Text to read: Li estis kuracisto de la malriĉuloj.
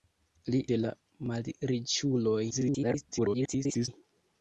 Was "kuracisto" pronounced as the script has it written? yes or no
no